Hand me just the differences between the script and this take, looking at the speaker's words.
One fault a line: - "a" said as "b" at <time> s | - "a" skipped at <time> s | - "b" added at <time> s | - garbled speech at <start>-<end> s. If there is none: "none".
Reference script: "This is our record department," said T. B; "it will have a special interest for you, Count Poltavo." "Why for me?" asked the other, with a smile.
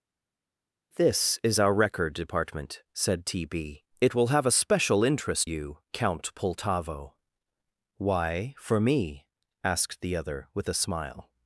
- "for" skipped at 5.5 s